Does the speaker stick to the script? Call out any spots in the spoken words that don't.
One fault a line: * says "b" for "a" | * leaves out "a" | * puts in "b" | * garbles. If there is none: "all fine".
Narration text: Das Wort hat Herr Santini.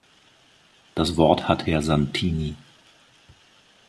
all fine